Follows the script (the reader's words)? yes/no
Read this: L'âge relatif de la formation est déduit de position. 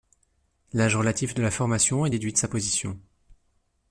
no